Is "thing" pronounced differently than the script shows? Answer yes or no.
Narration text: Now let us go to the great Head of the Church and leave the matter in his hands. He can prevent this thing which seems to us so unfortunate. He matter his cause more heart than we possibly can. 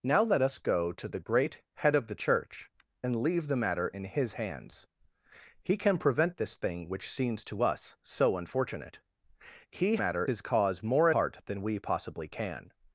no